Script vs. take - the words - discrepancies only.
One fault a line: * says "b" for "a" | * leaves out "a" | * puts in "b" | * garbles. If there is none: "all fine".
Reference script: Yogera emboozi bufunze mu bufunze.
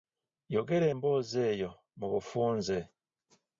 * says "eyo" for "bufunze"